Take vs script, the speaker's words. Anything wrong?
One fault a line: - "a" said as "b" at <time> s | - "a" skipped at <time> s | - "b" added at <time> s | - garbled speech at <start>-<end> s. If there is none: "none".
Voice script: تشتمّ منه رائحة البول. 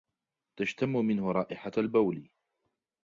none